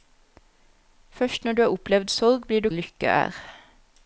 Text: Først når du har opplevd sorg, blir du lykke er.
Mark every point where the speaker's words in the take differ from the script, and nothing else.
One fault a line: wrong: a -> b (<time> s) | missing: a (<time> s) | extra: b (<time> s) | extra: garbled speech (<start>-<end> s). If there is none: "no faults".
no faults